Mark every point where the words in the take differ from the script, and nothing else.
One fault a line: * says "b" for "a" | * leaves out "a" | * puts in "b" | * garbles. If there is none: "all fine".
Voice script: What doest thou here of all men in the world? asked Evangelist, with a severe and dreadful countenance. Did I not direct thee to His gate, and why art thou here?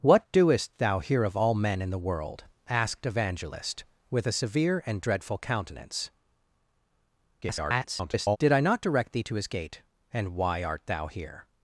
* garbles